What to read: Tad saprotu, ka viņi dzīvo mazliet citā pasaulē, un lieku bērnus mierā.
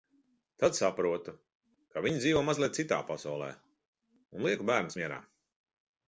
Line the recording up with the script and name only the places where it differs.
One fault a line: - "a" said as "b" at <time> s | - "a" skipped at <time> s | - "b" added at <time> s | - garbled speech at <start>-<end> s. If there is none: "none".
none